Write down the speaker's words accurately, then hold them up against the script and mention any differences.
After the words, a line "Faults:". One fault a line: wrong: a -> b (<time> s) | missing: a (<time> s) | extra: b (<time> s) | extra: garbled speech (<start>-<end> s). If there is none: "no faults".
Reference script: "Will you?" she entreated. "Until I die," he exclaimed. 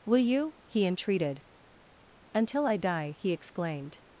"Will you?" he entreated. "Until I die," he exclaimed.
Faults:
wrong: she -> he (0.7 s)